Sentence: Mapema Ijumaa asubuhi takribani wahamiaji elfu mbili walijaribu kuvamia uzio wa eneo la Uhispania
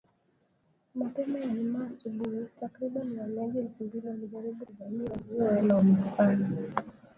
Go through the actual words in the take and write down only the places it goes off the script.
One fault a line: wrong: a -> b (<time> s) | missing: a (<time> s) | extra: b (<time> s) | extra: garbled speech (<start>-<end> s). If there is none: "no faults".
missing: eneo (5.6 s)